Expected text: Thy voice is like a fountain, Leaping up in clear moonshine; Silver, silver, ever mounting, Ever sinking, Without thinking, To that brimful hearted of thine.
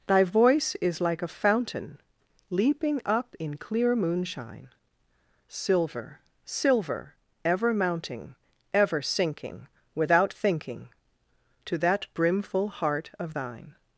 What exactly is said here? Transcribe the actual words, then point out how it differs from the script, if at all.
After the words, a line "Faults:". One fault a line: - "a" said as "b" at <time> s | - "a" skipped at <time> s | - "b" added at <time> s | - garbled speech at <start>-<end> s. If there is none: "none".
Thy voice is like a fountain, Leaping up in clear moonshine; Silver, silver, ever mounting, Ever sinking, Without thinking, To that brimful heart of thine.
Faults:
- "hearted" said as "heart" at 12.7 s